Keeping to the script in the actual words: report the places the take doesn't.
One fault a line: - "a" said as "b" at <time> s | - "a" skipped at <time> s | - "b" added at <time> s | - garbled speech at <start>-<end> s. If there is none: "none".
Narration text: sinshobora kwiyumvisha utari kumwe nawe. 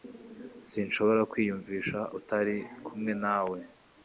none